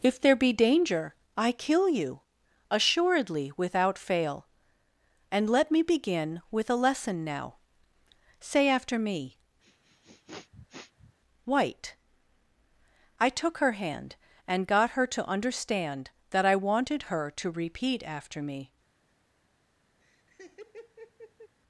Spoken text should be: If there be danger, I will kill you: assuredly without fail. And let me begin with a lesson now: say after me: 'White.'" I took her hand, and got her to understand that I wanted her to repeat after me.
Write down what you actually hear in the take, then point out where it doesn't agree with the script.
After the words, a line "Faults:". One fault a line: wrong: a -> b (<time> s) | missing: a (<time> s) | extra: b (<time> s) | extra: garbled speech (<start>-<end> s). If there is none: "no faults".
If there be danger, I kill you: assuredly without fail. And let me begin with a lesson now: say after me: 'White.'" I took her hand, and got her to understand that I wanted her to repeat after me.
Faults:
missing: will (1.5 s)